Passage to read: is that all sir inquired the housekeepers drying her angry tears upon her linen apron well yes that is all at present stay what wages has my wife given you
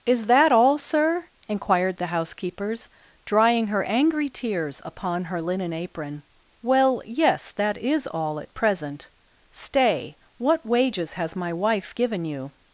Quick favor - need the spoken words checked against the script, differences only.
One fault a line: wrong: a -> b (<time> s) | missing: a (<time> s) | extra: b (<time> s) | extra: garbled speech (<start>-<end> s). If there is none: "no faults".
no faults